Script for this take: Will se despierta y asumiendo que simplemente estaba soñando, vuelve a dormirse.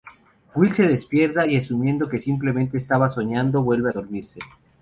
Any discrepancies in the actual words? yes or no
no